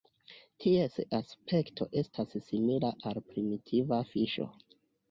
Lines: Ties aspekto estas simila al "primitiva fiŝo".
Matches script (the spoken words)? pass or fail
pass